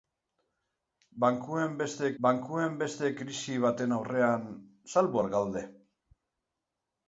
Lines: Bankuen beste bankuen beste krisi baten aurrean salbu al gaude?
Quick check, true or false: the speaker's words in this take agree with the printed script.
true